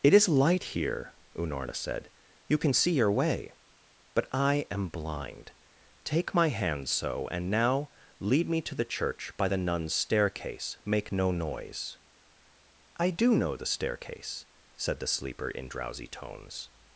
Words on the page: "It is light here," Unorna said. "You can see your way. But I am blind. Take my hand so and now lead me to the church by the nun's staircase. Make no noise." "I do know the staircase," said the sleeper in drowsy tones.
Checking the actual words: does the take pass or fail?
pass